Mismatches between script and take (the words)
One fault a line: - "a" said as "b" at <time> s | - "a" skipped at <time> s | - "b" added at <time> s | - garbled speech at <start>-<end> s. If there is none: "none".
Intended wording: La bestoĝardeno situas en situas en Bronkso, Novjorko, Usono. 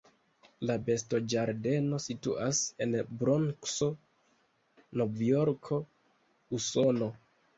- "situas en" skipped at 3.0 s